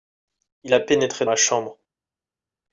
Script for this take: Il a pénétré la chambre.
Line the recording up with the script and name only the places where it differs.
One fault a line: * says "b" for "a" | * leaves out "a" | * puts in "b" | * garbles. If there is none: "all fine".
all fine